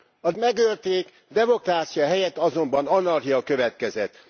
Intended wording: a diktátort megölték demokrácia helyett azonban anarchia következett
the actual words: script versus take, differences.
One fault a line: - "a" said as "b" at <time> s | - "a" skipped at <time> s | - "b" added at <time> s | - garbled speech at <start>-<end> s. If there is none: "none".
- "diktátort" skipped at 0.3 s